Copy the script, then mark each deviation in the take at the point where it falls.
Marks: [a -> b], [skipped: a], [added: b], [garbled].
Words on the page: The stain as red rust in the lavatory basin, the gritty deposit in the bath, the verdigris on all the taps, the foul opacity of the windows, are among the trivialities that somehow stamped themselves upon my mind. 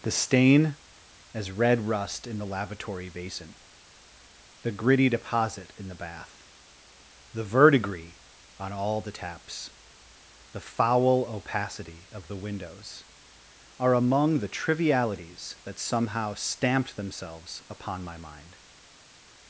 The stain as red rust in the lavatory basin, the gritty deposit in the bath, the verdigris on all the taps, the foul opacity of the windows, are among the trivialities that somehow stamped themselves upon my mind.